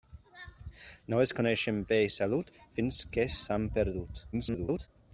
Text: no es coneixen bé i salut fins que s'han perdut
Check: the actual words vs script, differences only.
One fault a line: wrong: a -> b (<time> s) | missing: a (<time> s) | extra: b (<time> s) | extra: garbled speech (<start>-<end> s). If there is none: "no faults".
extra: garbled speech (4.3-4.9 s)